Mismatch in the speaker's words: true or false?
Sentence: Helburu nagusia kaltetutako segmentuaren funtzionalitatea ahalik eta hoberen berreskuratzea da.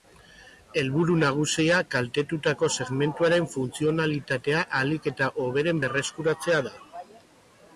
false